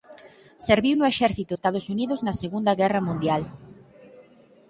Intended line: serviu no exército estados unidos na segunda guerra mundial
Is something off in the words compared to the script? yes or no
no